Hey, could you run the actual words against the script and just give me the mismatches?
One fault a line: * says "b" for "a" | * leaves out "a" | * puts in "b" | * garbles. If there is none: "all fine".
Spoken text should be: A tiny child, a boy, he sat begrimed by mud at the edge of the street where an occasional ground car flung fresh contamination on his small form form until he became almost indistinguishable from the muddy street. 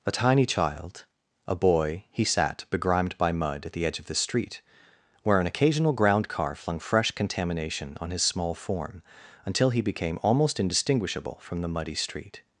* leaves out "form"